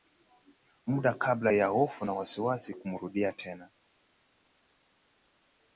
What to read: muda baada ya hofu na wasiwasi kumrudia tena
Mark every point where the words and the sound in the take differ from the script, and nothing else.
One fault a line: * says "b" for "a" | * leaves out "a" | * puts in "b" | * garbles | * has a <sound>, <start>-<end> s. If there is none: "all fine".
* says "kabla" for "baada"